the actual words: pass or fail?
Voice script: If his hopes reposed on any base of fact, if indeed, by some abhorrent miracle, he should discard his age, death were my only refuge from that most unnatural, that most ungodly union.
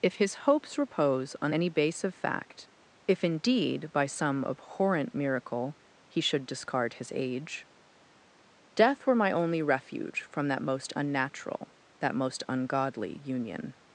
fail